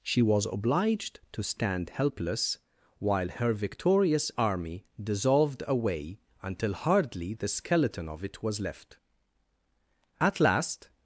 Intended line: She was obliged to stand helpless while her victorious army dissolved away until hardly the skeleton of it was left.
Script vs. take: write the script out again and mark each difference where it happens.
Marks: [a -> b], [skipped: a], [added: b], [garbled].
She was obliged to stand helpless while her victorious army dissolved away until hardly the skeleton of it was left. [added: At last]